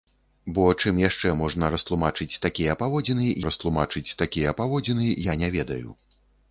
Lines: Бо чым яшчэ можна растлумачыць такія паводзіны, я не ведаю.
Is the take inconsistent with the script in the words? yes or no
yes